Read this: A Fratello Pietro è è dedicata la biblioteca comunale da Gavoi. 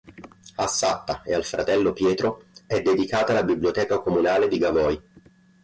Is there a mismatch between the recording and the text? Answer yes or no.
yes